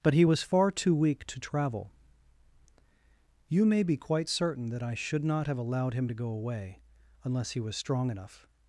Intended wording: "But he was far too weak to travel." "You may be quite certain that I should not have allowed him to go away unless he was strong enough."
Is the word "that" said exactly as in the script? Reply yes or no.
yes